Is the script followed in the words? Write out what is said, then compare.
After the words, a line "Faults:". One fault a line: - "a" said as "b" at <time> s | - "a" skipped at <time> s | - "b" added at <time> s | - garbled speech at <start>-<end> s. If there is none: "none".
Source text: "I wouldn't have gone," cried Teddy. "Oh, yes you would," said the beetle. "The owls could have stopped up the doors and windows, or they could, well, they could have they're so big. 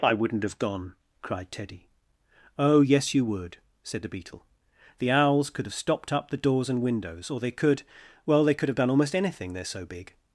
"I wouldn't have gone," cried Teddy. "Oh, yes you would," said the beetle. "The owls could have stopped up the doors and windows, or they could, well, they could have done almost anything, they're so big.
Faults:
- "done almost anything" added at 8.8 s